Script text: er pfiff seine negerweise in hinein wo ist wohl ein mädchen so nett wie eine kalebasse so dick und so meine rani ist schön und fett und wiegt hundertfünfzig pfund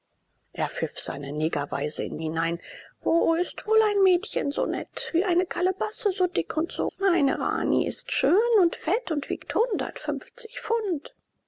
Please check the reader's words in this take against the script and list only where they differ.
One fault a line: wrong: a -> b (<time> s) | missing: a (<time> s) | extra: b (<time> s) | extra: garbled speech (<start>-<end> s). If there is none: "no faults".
no faults